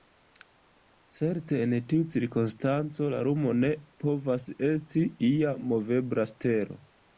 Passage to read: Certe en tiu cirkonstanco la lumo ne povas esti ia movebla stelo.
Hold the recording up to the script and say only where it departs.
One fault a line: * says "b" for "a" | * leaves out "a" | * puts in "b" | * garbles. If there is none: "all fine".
all fine